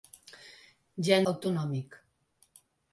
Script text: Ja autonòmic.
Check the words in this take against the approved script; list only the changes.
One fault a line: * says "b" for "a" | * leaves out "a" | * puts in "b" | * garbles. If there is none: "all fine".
all fine